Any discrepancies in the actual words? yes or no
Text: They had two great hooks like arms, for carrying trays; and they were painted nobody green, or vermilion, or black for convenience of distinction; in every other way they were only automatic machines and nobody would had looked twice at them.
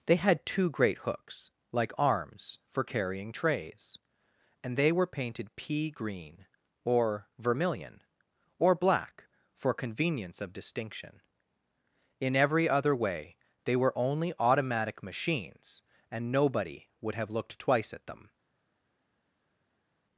yes